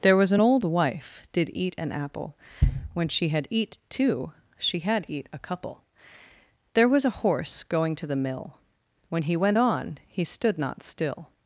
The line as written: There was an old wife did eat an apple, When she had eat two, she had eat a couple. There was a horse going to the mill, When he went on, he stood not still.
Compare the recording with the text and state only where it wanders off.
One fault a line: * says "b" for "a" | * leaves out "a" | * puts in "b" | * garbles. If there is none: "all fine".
all fine